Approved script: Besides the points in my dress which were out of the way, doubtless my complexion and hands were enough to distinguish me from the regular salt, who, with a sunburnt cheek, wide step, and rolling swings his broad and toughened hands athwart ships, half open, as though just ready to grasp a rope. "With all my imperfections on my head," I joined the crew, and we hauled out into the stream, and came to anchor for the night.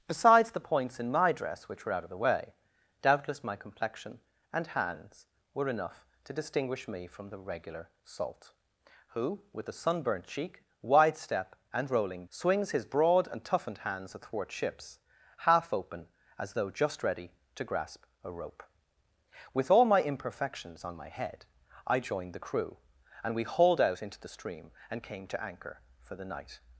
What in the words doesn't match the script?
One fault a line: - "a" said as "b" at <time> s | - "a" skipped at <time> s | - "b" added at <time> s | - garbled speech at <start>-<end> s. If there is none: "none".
none